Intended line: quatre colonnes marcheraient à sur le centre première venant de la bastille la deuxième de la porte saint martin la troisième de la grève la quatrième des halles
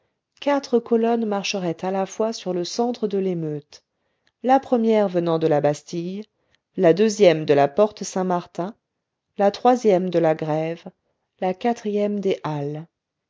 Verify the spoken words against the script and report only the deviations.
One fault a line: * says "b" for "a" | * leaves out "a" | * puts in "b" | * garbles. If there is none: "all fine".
* puts in "la fois"
* puts in "de l'émeute la"